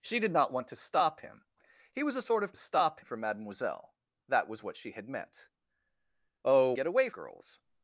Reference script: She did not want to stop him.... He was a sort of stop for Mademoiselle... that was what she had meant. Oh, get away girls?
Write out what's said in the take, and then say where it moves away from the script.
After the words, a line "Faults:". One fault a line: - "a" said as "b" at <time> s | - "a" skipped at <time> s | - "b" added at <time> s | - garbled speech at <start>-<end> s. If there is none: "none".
She did not want to stop him.... He was a sort of stop for Mademoiselle... that was what she had meant. Oh, get away girls?
Faults:
none